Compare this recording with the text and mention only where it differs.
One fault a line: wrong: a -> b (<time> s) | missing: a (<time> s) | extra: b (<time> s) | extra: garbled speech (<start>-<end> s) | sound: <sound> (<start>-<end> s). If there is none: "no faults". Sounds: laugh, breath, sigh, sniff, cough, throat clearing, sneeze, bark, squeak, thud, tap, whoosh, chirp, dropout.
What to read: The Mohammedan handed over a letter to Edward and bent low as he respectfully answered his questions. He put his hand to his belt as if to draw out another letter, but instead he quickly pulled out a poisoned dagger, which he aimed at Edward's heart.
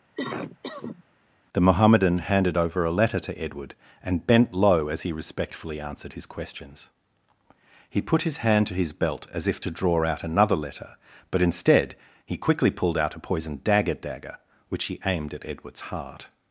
sound: cough (0.2-1.0 s)
extra: dagger (14.0 s)